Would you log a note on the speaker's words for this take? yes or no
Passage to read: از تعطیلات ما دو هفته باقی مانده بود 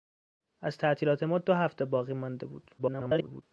yes